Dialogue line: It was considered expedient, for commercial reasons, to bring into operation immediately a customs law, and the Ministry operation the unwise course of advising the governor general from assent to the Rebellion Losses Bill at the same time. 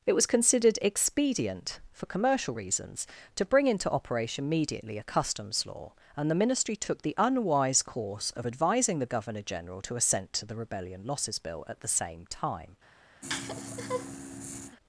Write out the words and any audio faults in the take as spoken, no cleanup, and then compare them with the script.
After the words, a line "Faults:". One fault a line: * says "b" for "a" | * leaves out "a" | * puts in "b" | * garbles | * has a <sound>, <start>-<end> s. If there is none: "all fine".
It was considered expedient, for commercial reasons, to bring into operation immediately a customs law, and the Ministry took the unwise course of advising the governor general to assent to the Rebellion Losses Bill at the same time.
Faults:
* says "took" for "operation"
* says "to" for "from"
* has a laugh, 13.2-14.8 s